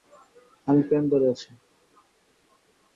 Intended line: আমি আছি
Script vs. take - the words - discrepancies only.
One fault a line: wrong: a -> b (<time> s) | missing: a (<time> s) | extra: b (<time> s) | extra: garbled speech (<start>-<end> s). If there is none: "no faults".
extra: প্যান্ট ধরে (0.9 s)